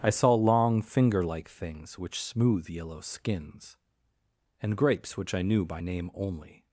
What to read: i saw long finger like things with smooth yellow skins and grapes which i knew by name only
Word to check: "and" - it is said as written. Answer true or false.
true